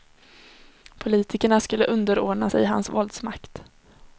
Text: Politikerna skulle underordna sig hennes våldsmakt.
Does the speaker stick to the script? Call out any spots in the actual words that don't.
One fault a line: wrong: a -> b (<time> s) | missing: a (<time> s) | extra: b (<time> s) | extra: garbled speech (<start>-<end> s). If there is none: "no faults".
wrong: hennes -> hans (2.6 s)